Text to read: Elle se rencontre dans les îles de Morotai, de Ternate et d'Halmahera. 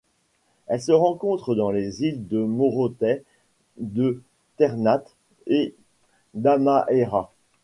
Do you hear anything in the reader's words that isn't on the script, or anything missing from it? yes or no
no